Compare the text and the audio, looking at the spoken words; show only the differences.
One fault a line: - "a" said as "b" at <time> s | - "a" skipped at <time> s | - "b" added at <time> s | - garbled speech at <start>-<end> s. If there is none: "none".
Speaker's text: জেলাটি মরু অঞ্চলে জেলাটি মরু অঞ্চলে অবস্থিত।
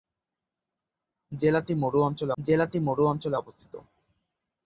none